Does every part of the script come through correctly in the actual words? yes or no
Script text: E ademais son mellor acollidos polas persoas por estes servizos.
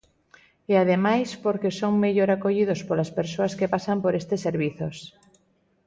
no